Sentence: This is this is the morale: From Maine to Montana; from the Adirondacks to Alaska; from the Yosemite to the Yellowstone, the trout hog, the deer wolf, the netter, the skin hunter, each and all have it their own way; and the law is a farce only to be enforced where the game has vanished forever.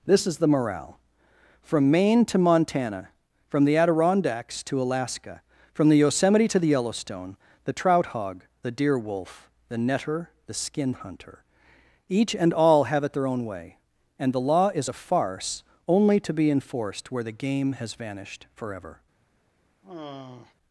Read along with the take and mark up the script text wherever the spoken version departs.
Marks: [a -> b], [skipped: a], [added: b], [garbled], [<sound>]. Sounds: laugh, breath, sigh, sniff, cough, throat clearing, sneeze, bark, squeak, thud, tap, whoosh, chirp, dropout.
This is [skipped: this is] the morale: From Maine to Montana; from the Adirondacks to Alaska; from the Yosemite to the Yellowstone, the trout hog, the deer wolf, the netter, the skin hunter, each and all have it their own way; and the law is a farce only to be enforced where the game has vanished forever. [sigh]